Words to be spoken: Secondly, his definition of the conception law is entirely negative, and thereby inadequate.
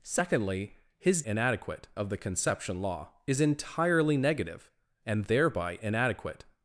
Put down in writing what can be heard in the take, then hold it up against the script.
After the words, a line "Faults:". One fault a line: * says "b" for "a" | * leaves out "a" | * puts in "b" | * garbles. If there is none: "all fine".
Secondly, his inadequate of the conception law is entirely negative, and thereby inadequate.
Faults:
* says "inadequate" for "definition"